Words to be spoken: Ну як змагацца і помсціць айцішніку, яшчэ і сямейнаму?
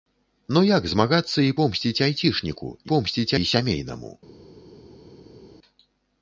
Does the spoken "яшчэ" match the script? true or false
false